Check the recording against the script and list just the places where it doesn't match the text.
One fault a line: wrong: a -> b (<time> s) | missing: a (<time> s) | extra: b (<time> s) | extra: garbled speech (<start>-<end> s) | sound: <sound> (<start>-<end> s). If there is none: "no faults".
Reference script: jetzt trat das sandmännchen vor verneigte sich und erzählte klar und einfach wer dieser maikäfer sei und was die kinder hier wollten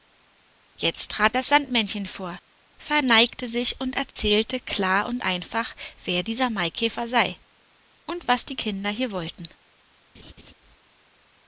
sound: dropout (4.1-4.2 s)
sound: laugh (10.1-10.5 s)